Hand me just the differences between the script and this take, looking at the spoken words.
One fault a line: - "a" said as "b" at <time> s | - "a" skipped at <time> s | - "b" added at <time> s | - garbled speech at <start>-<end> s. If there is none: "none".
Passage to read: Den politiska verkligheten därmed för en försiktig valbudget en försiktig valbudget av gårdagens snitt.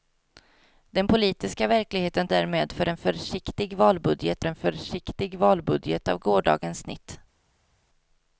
none